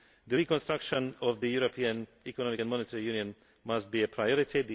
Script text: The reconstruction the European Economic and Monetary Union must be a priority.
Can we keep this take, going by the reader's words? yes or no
no